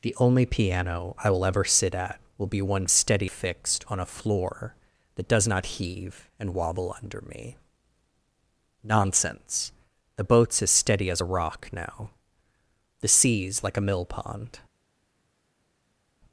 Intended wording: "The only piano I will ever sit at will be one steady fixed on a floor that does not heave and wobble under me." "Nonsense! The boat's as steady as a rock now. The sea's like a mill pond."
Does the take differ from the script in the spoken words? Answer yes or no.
no